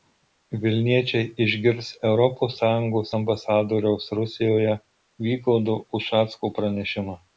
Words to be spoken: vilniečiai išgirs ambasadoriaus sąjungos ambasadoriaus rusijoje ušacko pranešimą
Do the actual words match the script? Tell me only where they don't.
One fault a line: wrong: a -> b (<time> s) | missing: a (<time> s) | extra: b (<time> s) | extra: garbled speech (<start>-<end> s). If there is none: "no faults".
wrong: ambasadoriaus -> europos (2.1 s)
extra: vygaudo (5.3 s)